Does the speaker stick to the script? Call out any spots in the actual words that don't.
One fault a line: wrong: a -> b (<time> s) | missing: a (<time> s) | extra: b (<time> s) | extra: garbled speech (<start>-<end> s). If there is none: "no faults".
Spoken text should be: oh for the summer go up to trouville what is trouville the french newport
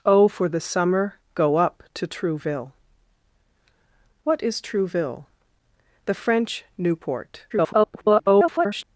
extra: garbled speech (7.5-8.8 s)